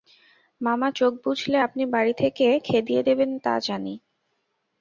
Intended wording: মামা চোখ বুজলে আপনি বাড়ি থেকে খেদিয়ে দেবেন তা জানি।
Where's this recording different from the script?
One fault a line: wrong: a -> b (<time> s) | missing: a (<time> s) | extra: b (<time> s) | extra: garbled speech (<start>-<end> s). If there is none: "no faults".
no faults